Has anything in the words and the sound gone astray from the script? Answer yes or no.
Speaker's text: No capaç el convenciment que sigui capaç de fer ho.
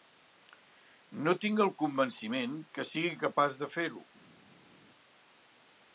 yes